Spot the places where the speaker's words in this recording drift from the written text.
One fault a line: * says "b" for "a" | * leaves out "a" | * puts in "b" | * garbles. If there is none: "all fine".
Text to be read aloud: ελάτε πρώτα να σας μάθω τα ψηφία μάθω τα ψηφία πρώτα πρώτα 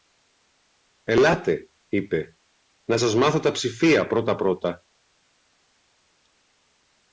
* says "είπε" for "πρώτα"
* leaves out "μάθω τα ψηφία"